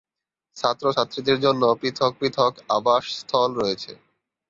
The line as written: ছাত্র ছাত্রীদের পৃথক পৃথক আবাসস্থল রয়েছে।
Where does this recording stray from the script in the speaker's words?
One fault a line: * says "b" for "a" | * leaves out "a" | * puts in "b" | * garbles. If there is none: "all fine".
* puts in "জন্য"